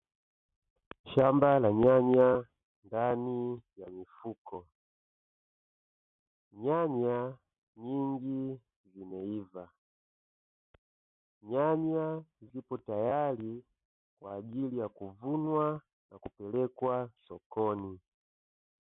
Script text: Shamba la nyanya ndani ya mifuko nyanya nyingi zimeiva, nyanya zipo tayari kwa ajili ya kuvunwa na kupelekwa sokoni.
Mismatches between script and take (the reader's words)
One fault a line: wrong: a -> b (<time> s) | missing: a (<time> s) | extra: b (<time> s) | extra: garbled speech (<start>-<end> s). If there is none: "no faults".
no faults